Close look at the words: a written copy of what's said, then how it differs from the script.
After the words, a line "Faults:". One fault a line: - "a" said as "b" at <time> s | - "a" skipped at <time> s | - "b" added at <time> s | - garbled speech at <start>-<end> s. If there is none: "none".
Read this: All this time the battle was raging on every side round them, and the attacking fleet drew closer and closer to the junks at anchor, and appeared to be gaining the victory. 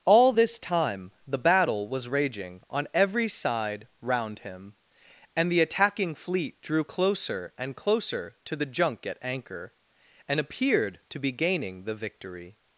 All this time the battle was raging on every side round him, and the attacking fleet drew closer and closer to the junk at anchor, and appeared to be gaining the victory.
Faults:
- "them" said as "him" at 4.4 s
- "junks" said as "junk" at 8.7 s